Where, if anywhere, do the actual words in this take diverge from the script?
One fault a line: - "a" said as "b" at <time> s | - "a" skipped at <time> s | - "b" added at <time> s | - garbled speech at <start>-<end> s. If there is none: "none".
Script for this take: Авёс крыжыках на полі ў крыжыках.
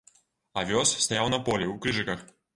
- "крыжыках" said as "стаяў" at 1.1 s